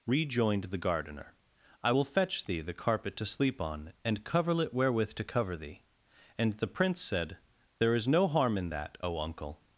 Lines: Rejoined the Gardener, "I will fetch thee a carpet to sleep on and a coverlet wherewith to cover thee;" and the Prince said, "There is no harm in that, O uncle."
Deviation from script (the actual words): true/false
true